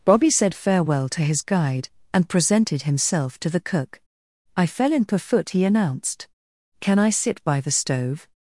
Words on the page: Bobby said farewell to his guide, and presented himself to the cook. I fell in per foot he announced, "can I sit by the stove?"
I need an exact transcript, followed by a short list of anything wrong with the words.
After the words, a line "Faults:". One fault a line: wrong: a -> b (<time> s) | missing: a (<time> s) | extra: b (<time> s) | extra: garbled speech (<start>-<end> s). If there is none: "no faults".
Bobby said farewell to his guide, and presented himself to the cook. I fell in per foot he announced, "can I sit by the stove?"
Faults:
no faults